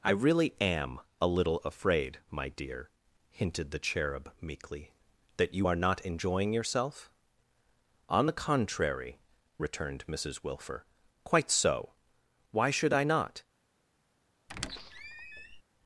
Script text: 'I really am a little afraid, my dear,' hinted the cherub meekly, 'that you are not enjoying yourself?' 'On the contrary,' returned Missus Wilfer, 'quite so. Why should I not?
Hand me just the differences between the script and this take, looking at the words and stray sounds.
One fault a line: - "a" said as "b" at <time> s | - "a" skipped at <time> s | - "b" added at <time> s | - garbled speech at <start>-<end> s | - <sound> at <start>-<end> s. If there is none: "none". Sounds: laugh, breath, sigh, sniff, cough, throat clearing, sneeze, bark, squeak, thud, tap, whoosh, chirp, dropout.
- squeak at 14.5-15.6 s